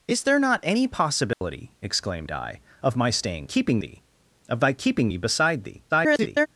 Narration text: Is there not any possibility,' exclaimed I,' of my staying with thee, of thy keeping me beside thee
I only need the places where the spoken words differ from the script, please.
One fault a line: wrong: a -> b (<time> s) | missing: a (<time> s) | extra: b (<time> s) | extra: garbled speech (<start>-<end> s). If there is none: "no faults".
wrong: with -> keeping (3.4 s)
extra: garbled speech (5.9-6.5 s)